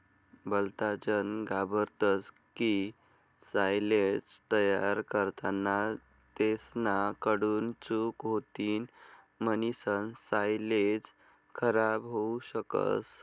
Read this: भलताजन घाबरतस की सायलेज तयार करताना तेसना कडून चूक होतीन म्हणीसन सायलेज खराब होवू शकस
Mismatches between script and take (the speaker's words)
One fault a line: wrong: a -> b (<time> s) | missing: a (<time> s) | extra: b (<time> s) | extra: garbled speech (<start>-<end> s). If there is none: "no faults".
no faults